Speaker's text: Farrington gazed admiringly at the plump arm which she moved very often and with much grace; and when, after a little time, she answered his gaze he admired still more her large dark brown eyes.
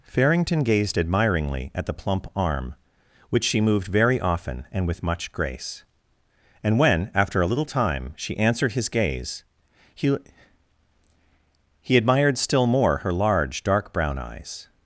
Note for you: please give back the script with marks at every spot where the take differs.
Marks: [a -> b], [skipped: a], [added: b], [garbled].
Farrington gazed admiringly at the plump arm which she moved very often and with much grace; and when, after a little time, she answered his gaze he [added: he] admired still more her large dark brown eyes.